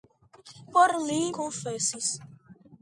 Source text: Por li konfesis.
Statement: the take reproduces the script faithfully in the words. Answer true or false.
true